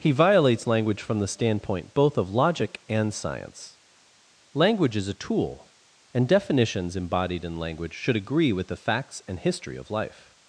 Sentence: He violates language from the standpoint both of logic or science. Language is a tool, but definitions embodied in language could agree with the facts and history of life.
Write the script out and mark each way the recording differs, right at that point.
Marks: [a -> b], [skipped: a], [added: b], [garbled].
He violates language from the standpoint both of logic [or -> and] science. Language is a tool, [but -> and] definitions embodied in language [could -> should] agree with the facts and history of life.